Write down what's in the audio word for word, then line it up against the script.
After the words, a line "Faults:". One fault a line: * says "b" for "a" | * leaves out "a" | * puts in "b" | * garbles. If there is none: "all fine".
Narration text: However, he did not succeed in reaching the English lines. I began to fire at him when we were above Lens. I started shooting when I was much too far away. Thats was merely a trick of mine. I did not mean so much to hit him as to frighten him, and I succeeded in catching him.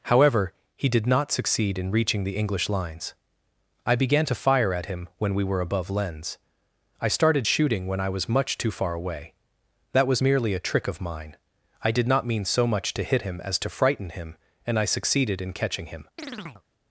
However, he did not succeed in reaching the English lines. I began to fire at him when we were above Lens. I started shooting when I was much too far away. That was merely a trick of mine. I did not mean so much to hit him as to frighten him, and I succeeded in catching him.
Faults:
* says "That" for "Thats"